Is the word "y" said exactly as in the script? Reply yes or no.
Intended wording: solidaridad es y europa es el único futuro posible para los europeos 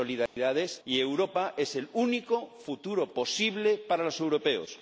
yes